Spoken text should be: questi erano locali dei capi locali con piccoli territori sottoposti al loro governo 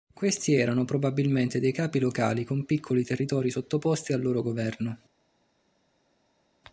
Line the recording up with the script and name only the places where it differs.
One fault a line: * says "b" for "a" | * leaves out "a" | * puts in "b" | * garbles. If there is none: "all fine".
* says "probabilmente" for "locali"